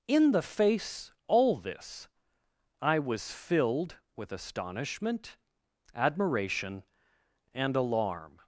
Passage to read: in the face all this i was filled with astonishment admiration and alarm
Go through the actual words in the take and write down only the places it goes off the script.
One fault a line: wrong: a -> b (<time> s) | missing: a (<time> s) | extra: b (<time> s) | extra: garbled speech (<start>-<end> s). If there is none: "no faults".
no faults